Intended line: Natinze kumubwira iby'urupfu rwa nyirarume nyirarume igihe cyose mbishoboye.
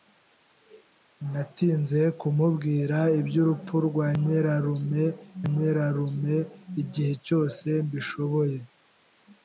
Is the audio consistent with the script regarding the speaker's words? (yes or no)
yes